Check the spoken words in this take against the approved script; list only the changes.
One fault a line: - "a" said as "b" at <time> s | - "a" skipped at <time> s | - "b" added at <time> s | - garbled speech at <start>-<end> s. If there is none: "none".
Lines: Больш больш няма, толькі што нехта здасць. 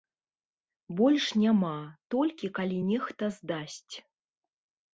- "больш" skipped at 1.2 s
- "што" said as "калі" at 2.6 s